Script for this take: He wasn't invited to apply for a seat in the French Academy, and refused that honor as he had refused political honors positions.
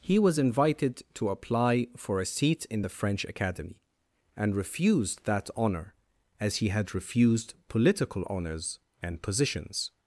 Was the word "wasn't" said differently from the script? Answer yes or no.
yes